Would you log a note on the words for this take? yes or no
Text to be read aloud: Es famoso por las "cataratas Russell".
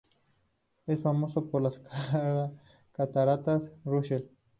no